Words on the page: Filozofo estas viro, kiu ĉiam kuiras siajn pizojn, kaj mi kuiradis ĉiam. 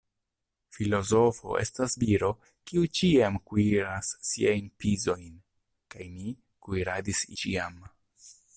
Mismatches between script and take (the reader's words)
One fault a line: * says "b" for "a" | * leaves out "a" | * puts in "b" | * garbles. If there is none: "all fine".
all fine